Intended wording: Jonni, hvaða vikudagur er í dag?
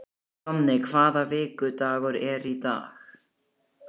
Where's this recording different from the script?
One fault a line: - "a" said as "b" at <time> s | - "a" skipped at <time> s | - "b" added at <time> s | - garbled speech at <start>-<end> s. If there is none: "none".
none